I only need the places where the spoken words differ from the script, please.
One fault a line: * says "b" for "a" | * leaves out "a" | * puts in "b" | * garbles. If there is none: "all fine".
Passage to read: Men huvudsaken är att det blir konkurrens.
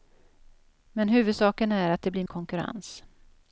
all fine